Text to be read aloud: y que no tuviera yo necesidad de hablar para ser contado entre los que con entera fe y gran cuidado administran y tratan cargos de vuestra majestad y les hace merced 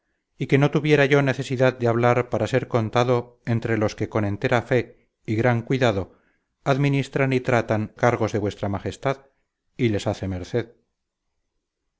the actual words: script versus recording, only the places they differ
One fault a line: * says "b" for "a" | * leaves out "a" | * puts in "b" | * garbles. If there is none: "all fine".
all fine